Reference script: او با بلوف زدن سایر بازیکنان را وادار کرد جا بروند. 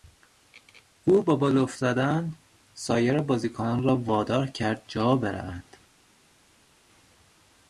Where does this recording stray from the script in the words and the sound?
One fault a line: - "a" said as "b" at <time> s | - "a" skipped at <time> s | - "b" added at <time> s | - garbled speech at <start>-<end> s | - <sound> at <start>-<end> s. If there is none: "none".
none